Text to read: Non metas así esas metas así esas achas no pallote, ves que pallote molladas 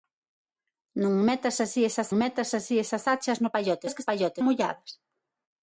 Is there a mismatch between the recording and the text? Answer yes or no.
no